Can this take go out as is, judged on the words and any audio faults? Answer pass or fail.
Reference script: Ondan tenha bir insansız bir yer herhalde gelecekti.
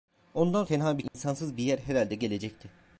fail